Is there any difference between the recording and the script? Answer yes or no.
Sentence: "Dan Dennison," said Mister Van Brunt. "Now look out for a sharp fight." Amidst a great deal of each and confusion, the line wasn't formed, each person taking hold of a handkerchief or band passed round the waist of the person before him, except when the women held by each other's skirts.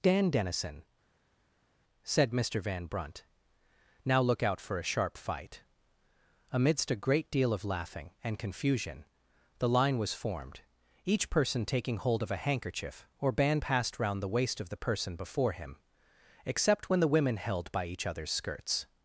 yes